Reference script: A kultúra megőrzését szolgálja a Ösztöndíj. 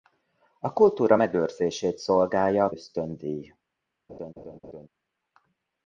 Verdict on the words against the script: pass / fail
pass